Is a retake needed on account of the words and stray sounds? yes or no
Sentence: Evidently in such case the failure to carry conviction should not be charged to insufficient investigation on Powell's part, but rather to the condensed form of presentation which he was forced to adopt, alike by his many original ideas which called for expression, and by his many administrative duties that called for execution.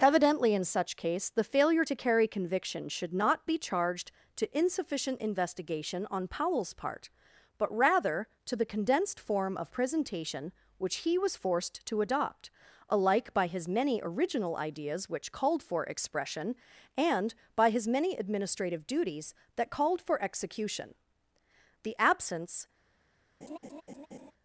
yes